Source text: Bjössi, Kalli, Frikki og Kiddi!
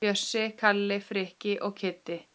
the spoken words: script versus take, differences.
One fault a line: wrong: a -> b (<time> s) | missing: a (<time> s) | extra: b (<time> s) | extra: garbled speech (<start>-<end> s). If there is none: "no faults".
no faults